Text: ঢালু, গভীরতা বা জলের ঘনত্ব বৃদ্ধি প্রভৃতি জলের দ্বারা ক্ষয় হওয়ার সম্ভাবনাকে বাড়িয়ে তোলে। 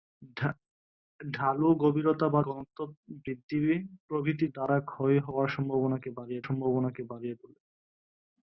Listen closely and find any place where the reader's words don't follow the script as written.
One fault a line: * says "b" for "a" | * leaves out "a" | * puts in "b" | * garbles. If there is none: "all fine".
* leaves out "জলের"
* leaves out "জলের"
* puts in "সম্ভাবনাকে বাড়িয়ে"